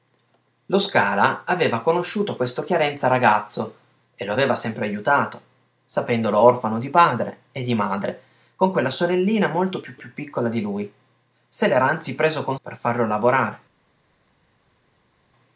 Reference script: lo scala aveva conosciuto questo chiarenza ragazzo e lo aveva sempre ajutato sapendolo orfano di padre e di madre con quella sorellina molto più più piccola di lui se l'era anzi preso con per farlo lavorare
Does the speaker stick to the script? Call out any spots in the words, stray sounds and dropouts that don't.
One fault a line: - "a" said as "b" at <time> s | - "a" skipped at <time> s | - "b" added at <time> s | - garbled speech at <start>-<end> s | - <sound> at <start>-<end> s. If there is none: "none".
none